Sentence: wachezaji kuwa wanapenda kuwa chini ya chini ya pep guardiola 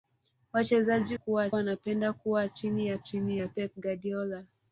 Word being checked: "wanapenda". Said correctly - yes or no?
yes